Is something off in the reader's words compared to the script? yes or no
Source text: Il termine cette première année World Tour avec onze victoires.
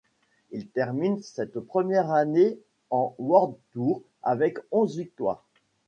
yes